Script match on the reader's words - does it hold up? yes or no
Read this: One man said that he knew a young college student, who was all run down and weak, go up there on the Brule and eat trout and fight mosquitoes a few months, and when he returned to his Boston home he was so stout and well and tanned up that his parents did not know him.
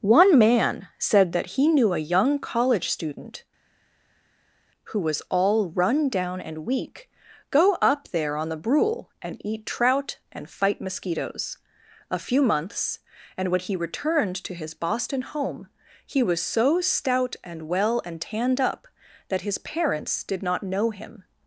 yes